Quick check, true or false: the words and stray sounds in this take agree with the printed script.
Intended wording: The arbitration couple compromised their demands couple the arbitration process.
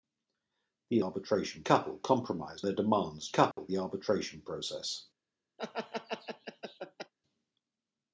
false